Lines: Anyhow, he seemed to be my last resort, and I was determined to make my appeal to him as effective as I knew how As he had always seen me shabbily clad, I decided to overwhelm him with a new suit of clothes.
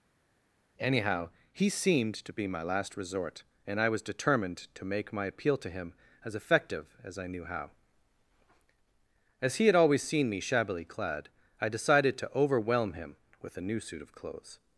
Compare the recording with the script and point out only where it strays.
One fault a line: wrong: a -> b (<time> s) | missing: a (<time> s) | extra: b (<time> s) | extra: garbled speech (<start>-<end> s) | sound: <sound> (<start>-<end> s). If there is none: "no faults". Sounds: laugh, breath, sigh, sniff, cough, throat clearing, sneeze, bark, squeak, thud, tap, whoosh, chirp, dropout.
no faults